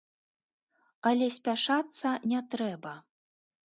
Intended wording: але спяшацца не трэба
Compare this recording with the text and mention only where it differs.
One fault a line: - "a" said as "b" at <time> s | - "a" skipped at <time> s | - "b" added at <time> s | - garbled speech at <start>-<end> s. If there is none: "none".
none